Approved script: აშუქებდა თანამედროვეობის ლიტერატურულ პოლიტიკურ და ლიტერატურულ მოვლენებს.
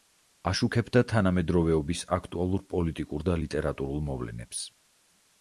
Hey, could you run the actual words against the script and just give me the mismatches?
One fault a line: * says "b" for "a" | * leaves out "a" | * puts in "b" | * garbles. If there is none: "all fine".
* says "აქტუალურ" for "ლიტერატურულ"